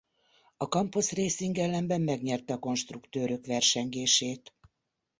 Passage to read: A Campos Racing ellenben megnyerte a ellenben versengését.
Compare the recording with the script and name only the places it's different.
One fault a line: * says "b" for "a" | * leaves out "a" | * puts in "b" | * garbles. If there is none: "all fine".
* says "konstruktőrök" for "ellenben"